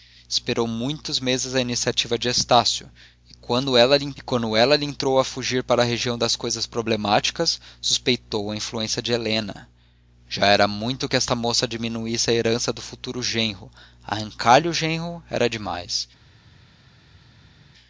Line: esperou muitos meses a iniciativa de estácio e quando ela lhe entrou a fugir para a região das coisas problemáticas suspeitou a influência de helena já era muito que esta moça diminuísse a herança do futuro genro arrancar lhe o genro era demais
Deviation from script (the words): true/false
false